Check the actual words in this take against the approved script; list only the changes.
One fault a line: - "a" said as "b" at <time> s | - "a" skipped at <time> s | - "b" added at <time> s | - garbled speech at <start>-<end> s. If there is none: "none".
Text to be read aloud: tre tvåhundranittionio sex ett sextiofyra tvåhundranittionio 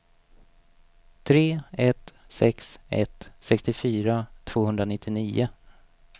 - "tvåhundranittionio" said as "ett" at 1.7 s